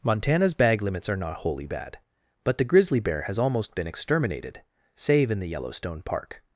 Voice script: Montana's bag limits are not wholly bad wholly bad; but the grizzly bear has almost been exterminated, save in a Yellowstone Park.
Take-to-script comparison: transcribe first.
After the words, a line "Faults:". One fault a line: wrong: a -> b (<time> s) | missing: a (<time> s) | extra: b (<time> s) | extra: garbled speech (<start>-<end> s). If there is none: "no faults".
Montana's bag limits are not wholly bad; but the grizzly bear has almost been exterminated, save in the Yellowstone Park.
Faults:
missing: wholly bad (2.0 s)
wrong: a -> the (5.4 s)